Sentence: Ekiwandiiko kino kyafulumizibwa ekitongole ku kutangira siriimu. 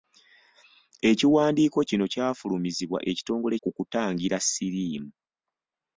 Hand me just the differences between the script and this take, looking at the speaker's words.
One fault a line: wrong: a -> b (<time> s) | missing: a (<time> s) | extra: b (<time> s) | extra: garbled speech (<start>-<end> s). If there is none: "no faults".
no faults